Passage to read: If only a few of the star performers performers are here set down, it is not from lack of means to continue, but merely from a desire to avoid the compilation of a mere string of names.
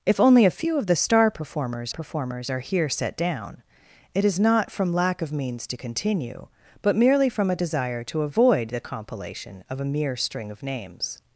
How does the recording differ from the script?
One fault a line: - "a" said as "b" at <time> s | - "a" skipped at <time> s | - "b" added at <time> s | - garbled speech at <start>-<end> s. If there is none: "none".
none